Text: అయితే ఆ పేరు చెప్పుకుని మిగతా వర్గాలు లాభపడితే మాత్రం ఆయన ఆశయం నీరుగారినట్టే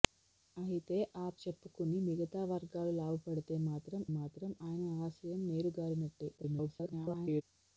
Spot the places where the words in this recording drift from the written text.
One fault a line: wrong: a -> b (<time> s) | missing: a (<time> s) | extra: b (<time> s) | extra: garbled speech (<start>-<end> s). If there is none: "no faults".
missing: పేరు (1.3 s)
extra: మాత్రం (4.2 s)
extra: garbled speech (6.4-7.4 s)